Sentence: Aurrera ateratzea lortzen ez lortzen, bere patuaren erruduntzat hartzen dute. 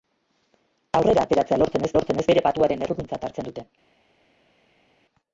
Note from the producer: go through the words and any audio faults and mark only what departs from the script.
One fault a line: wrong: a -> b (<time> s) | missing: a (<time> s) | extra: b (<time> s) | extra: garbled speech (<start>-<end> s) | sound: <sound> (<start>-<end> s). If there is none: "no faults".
no faults